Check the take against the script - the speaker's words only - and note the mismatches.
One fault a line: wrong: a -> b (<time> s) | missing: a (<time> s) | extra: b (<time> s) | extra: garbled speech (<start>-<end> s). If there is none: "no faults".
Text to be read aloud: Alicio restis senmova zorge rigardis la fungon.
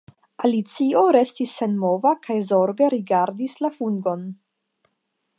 extra: kaj (2.2 s)